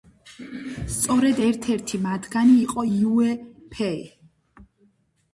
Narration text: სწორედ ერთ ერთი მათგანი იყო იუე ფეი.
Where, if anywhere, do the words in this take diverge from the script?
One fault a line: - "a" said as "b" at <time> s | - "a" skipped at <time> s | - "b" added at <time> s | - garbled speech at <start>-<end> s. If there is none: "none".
none